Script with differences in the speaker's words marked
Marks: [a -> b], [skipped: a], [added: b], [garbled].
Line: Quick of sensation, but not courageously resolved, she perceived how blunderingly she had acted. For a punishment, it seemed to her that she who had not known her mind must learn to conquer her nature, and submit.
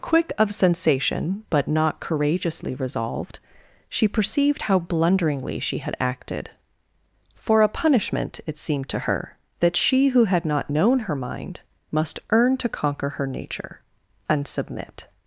Quick of sensation, but not courageously resolved, she perceived how blunderingly she had acted. For a punishment, it seemed to her that she who had not known her mind must [learn -> earn] to conquer her nature, and submit.